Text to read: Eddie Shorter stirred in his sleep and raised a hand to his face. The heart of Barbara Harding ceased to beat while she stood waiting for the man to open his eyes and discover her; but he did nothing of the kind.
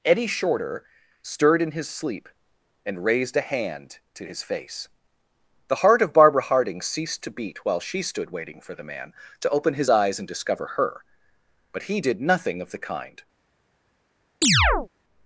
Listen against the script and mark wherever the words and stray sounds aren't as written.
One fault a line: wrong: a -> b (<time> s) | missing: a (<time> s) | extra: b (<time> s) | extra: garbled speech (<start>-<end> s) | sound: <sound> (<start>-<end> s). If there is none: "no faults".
sound: chirp (14.4-14.9 s)